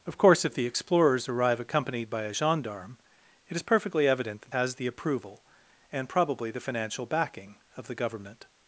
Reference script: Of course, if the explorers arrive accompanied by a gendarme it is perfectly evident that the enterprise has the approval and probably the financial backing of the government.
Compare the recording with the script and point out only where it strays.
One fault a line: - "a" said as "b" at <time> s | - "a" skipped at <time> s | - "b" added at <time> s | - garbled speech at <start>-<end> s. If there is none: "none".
- "the enterprise" skipped at 4.5 s